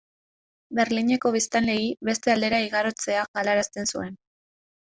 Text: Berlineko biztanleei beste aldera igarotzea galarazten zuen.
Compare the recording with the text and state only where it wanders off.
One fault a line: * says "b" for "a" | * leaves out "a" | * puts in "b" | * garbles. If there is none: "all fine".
all fine